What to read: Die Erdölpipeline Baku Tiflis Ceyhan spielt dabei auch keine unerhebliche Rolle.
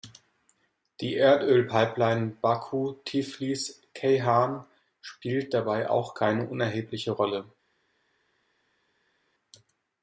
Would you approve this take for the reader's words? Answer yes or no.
yes